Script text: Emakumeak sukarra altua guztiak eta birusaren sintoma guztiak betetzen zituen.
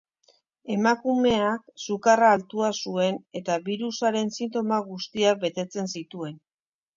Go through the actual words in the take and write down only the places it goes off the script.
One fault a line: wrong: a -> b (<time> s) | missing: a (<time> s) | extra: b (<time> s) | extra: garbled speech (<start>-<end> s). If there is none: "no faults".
wrong: guztiak -> zuen (2.8 s)